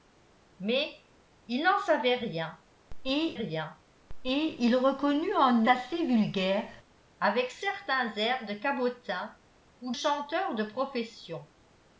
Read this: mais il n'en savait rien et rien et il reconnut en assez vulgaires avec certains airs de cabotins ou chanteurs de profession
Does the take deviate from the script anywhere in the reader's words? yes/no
no